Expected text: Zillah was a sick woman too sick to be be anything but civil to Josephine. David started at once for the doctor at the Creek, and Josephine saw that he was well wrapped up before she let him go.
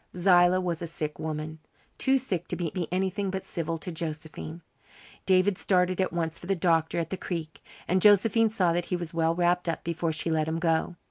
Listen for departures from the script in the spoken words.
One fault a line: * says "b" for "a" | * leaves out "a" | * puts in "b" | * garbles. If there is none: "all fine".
all fine